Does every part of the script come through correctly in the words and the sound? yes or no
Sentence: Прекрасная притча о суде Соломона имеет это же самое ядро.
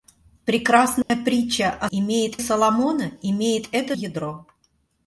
no